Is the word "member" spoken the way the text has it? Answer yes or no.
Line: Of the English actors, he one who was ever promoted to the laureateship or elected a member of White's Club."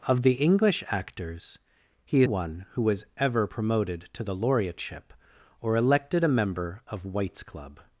yes